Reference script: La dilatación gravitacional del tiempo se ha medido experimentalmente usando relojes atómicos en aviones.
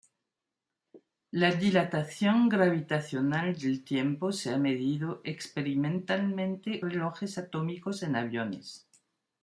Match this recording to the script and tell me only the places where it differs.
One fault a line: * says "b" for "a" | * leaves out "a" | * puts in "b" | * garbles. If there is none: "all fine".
* leaves out "usando"